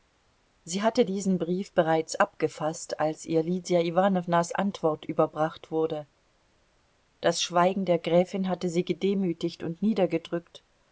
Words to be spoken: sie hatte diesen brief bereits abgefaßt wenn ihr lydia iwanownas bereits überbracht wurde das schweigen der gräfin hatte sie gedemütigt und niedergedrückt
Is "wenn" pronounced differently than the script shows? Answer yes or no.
yes